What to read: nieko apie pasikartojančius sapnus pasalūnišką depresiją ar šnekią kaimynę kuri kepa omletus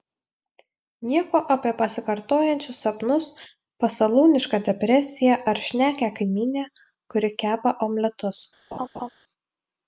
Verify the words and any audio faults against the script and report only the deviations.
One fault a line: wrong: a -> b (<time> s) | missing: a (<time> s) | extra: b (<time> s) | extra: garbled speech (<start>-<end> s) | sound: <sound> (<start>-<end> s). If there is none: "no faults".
sound: laugh (8.7-9.1 s)